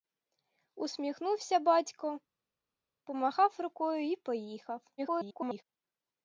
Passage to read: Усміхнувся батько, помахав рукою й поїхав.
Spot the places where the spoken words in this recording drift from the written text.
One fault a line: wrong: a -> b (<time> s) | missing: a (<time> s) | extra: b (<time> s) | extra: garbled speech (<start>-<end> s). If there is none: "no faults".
extra: garbled speech (5.0-5.6 s)